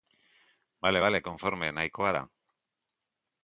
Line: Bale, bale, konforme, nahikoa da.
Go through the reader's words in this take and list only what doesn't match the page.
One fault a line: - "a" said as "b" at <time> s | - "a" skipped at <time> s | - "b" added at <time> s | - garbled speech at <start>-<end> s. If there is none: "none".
none